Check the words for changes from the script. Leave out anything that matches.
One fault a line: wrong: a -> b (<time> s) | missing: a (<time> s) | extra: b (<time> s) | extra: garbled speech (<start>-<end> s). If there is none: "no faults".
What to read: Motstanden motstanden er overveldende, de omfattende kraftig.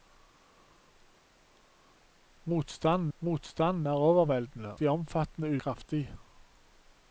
no faults